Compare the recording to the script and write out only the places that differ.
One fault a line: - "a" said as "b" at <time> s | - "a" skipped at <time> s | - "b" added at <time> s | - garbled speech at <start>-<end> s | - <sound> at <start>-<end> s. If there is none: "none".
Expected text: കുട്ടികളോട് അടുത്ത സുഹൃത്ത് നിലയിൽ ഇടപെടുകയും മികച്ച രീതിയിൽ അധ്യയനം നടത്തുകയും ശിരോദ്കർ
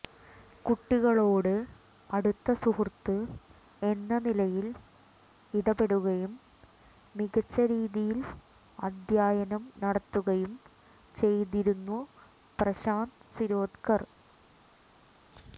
- "എന്ന" added at 3.8 s
- "ചെയ്തിരുന്നു പ്രശാന്ത്" added at 11.2 s